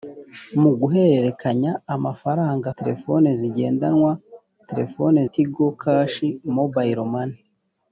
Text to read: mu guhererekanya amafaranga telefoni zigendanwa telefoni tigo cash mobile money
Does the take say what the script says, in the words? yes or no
yes